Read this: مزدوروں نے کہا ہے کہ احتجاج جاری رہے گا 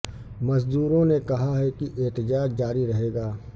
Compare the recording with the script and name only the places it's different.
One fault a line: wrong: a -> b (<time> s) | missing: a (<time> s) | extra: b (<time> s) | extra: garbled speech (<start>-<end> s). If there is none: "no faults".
no faults